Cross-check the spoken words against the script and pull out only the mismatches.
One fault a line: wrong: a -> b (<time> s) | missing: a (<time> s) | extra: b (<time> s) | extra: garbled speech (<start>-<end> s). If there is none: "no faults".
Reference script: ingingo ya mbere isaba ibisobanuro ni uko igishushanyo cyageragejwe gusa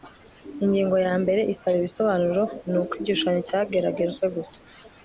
no faults